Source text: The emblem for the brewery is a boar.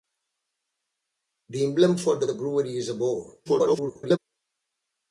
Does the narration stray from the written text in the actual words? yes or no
yes